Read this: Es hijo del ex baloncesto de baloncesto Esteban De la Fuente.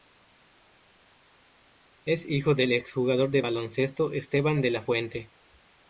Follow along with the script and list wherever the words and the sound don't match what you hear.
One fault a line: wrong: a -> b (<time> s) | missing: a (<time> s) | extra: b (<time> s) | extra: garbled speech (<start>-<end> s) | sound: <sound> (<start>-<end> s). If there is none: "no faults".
wrong: baloncesto -> jugador (2.9 s)